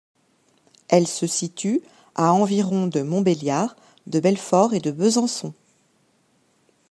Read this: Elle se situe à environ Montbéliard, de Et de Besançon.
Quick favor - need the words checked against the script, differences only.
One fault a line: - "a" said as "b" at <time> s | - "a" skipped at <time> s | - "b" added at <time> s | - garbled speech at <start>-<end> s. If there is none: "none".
- "de" added at 2.9 s
- "Belfort" added at 4.2 s